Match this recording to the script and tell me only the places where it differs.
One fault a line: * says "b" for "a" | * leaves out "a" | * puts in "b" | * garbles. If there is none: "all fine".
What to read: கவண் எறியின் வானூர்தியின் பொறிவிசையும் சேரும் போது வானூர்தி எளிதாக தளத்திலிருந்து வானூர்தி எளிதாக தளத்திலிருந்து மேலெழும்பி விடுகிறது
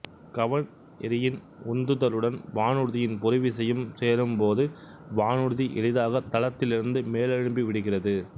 * puts in "உந்துதலுடன்"
* leaves out "வானூர்தி எளிதாக தளத்திலிருந்து"